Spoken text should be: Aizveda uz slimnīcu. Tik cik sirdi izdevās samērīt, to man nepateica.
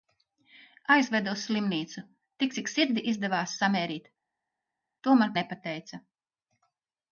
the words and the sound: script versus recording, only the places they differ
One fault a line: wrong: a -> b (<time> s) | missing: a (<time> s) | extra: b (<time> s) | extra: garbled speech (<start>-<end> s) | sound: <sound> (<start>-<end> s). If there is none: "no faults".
no faults